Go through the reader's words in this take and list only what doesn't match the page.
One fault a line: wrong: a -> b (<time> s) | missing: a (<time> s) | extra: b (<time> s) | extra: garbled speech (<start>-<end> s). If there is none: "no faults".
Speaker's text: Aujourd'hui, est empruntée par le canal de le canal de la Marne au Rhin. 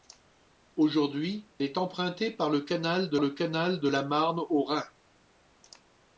no faults